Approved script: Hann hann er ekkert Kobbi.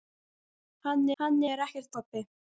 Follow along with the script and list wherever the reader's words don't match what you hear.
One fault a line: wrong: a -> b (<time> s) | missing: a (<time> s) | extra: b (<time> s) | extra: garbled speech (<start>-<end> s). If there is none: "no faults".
no faults